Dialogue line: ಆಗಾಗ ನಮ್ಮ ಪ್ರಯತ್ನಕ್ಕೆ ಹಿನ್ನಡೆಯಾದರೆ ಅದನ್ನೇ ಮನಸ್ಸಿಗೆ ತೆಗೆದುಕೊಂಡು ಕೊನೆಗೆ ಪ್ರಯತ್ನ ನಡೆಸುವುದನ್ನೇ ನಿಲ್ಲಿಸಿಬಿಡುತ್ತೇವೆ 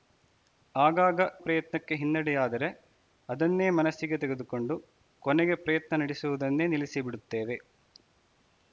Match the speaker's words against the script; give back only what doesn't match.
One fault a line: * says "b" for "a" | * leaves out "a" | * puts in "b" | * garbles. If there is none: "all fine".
* leaves out "ನಮ್ಮ"